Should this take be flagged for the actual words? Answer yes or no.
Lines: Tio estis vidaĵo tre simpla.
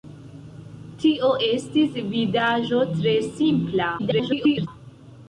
yes